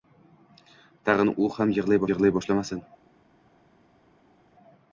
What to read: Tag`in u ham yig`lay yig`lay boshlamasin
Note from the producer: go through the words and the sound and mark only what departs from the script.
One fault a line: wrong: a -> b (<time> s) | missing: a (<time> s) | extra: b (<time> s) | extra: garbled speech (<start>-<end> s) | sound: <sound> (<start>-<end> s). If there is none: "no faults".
no faults